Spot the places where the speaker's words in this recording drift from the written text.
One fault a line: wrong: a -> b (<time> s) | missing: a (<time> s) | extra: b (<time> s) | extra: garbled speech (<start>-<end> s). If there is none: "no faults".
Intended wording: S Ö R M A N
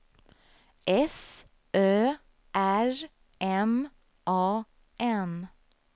no faults